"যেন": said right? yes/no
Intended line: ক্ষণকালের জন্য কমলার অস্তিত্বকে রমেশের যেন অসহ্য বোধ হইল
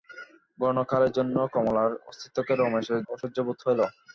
no